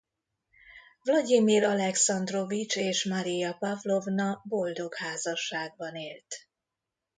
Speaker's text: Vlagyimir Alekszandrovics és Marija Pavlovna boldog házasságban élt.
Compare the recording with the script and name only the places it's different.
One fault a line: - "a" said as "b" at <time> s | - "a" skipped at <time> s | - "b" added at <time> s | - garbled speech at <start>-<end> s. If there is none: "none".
none